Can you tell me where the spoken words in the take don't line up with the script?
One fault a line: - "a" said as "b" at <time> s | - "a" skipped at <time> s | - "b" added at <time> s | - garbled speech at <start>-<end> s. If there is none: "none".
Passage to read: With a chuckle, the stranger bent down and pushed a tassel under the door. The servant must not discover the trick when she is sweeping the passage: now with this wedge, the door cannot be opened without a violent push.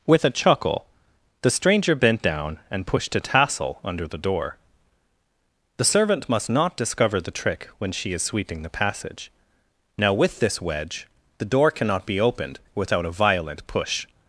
none